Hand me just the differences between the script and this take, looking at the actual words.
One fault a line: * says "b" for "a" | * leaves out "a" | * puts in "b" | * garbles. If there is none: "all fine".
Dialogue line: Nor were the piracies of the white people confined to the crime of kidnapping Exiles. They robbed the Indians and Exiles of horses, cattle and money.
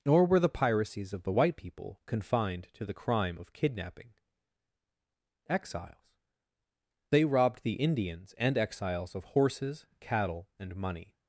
all fine